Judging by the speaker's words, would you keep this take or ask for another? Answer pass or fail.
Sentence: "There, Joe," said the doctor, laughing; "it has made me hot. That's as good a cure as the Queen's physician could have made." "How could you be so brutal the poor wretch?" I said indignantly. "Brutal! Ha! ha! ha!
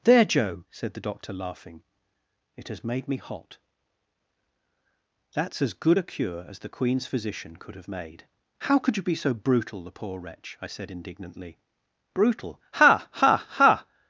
pass